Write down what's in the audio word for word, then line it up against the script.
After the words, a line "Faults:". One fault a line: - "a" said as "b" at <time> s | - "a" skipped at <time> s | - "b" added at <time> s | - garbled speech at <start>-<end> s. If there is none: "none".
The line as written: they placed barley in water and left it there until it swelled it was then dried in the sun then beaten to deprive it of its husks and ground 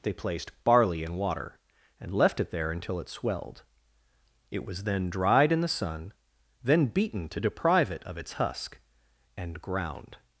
they placed barley in water and left it there until it swelled it was then dried in the sun then beaten to deprive it of its husk and ground
Faults:
- "husks" said as "husk" at 8.3 s